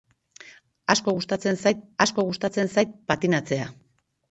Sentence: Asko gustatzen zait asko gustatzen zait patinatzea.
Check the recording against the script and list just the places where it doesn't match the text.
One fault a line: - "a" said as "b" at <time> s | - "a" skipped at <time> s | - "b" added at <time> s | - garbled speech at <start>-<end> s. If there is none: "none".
none